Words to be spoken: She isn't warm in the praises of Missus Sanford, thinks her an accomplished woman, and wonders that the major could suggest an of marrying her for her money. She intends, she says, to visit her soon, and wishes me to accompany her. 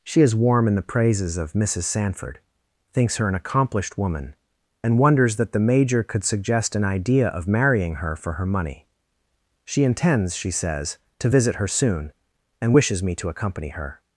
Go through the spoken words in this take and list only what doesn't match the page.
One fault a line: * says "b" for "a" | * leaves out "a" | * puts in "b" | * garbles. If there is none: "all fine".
* says "is" for "isn't"
* puts in "idea"